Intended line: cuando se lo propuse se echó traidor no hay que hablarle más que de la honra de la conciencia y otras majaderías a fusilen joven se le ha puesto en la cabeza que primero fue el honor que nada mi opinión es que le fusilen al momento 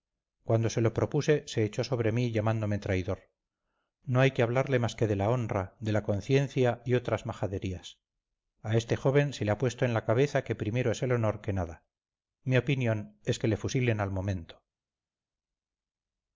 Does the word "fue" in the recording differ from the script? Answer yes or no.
yes